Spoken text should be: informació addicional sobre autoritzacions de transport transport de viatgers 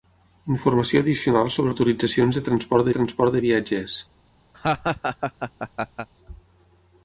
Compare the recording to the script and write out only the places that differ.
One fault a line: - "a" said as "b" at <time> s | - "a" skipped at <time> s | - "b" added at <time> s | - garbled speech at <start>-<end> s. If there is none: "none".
none